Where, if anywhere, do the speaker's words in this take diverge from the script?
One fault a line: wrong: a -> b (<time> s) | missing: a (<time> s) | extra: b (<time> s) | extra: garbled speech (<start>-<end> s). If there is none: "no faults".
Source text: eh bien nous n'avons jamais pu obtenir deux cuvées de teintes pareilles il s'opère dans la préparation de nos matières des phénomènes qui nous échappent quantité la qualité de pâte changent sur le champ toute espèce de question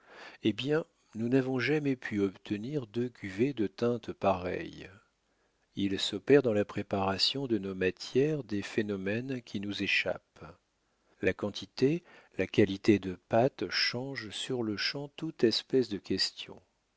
extra: la (11.2 s)